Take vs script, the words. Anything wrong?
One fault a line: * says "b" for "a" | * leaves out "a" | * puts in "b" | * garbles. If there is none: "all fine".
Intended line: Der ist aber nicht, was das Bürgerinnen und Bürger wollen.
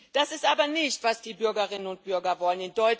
* says "Das" for "Der"
* says "die" for "das"